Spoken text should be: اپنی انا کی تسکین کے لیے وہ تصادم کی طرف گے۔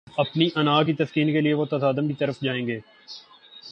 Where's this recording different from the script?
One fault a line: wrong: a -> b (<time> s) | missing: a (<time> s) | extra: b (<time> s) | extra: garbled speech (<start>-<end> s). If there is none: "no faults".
extra: جائیں (2.4 s)